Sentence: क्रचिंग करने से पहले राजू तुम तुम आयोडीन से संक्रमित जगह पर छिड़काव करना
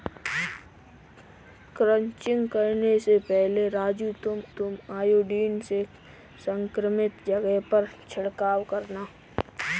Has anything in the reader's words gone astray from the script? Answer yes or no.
no